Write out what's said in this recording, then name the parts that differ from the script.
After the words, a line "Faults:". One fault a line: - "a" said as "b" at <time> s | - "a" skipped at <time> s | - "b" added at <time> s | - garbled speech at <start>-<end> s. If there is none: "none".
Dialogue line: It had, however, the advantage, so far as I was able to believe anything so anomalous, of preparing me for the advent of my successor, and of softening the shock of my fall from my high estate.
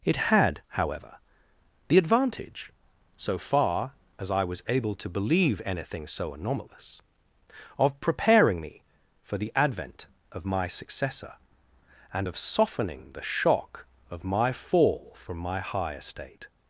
It had, however, the advantage, so far as I was able to believe anything so anomalous, of preparing me for the advent of my successor, and of softening the shock of my fall from my high estate.
Faults:
none